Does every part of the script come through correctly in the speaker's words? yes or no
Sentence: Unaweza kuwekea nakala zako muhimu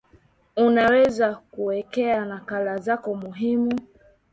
yes